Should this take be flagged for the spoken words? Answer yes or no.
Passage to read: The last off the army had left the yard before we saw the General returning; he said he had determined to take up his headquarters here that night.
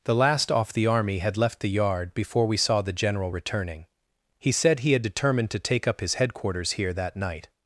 no